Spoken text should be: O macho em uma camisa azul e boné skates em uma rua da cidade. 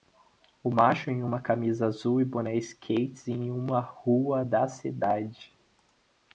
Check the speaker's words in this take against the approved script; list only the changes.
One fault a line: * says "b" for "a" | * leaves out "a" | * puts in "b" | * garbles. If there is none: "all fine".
all fine